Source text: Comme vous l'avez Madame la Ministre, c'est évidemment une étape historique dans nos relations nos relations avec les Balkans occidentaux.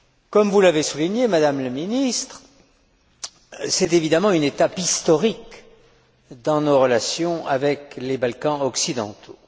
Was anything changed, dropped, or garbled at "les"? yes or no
no